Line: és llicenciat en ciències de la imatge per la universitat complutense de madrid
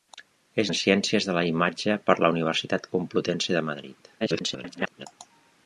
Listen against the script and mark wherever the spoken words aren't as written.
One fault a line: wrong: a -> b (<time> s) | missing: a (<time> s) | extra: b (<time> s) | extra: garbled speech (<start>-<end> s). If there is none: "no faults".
missing: llicenciat (0.7 s)
extra: garbled speech (4.2-5.1 s)